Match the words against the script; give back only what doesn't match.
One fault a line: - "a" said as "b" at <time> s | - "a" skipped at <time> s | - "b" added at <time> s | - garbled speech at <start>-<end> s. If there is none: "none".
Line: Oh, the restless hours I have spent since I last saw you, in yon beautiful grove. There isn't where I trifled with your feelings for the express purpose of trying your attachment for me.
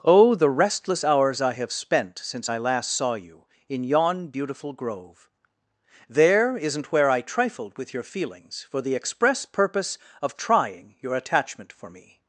none